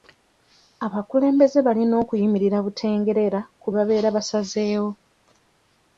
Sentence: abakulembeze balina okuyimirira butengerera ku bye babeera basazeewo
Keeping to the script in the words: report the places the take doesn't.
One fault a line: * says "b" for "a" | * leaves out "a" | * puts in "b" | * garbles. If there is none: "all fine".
* leaves out "bye"